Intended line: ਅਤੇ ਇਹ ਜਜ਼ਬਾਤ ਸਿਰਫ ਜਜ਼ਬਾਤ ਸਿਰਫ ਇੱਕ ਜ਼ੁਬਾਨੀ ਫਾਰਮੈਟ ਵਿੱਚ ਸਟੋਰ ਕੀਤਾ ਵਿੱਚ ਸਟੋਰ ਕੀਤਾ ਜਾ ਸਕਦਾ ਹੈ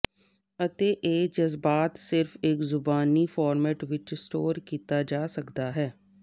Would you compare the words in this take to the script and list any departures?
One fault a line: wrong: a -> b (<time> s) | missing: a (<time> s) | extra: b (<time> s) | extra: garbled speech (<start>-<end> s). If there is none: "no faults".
missing: ਜਜ਼ਬਾਤ ਸਿਰਫ (2.4 s)
missing: ਵਿੱਚ ਸਟੋਰ ਕੀਤਾ (5.0 s)